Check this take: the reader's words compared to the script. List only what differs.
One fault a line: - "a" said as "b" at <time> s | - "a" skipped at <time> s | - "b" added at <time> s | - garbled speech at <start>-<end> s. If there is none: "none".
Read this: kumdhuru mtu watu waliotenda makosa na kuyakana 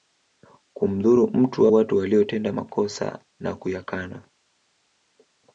none